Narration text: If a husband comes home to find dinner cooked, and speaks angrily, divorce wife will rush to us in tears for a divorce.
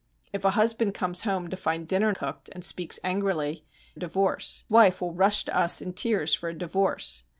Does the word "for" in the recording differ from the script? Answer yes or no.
no